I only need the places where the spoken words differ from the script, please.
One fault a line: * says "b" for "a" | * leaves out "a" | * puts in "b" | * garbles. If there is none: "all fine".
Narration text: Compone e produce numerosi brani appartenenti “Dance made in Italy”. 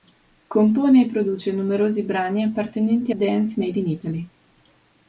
all fine